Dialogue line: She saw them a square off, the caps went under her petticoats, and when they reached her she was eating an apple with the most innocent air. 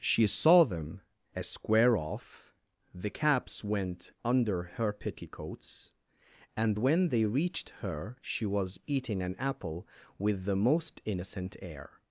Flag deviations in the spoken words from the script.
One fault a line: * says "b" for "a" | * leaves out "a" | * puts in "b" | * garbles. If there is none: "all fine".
all fine